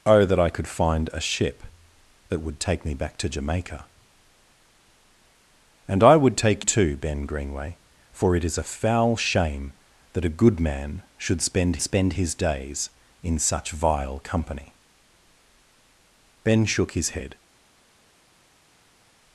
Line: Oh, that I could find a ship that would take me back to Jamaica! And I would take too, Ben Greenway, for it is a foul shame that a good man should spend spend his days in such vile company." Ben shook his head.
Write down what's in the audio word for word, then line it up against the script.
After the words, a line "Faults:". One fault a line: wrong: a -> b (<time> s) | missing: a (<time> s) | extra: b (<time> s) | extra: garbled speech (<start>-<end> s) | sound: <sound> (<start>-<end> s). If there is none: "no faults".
Oh, that I could find a ship that would take me back to Jamaica! And I would take too, Ben Greenway, for it is a foul shame that a good man should spend spend his days in such vile company." Ben shook his head.
Faults:
no faults